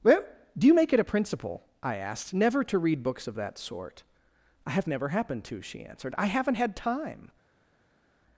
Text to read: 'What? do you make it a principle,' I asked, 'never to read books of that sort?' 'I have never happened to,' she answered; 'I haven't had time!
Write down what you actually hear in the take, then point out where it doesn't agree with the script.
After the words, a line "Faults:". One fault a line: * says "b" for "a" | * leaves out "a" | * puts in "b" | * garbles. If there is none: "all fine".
'Well? do you make it a principle,' I asked, 'never to read books of that sort?' 'I have never happened to,' she answered; 'I haven't had time!
Faults:
* says "Well" for "What"